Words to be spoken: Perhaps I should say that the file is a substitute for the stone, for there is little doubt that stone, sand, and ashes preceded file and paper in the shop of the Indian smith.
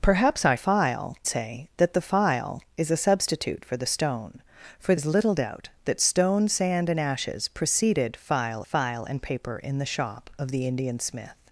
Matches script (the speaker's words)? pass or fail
fail